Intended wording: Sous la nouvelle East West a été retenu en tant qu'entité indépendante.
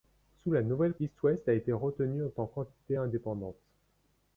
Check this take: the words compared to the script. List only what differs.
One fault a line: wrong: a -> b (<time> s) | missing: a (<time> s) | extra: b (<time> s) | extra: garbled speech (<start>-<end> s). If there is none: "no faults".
no faults